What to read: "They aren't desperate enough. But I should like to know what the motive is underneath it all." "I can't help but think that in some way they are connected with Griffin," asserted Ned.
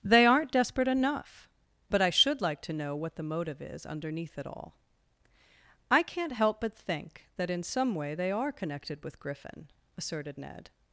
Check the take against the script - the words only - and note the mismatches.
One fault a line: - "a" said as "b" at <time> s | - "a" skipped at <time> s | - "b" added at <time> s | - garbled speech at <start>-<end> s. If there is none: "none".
none